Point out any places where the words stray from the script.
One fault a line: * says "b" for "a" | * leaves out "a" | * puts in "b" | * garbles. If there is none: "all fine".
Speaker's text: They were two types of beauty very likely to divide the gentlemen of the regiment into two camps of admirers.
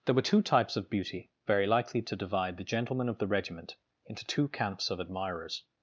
* says "There" for "They"